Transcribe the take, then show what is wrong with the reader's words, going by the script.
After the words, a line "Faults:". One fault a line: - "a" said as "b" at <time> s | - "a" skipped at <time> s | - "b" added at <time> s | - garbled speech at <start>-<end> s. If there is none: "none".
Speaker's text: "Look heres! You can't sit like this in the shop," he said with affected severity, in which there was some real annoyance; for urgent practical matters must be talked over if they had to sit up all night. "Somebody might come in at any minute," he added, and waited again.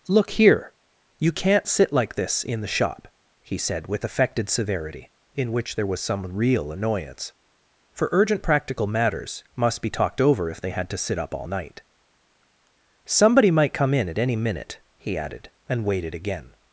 "Look here! You can't sit like this in the shop," he said with affected severity, in which there was some real annoyance; for urgent practical matters must be talked over if they had to sit up all night. "Somebody might come in at any minute," he added, and waited again.
Faults:
- "heres" said as "here" at 0.3 s